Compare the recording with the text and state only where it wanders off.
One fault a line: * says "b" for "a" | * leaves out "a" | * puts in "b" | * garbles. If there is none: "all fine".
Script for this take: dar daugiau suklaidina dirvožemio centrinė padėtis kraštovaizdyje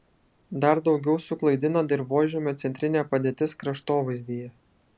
all fine